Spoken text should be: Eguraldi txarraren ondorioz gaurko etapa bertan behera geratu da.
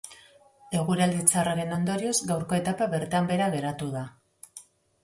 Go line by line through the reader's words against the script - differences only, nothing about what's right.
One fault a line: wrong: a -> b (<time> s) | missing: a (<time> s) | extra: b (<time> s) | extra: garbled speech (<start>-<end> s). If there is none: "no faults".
no faults